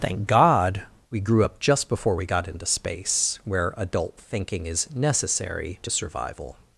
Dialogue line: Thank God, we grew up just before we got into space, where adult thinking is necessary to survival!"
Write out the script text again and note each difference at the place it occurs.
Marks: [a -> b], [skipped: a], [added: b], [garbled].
Thank God, we grew up just before we got into space, where adult thinking is necessary to survival!"